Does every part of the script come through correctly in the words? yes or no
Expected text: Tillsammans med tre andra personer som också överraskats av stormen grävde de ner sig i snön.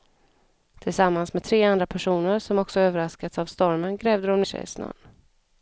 no